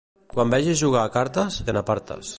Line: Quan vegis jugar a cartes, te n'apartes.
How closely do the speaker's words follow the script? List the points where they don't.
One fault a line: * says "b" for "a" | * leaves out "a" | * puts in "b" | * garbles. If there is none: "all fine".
all fine